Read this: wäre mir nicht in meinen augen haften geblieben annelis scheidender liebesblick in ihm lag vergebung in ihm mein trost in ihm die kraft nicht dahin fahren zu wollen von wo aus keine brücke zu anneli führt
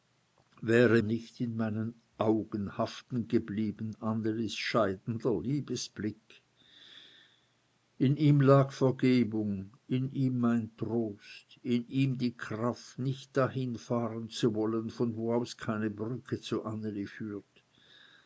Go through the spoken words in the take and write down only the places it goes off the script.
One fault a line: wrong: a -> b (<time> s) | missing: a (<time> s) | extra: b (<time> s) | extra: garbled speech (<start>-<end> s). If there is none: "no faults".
missing: mir (1.0 s)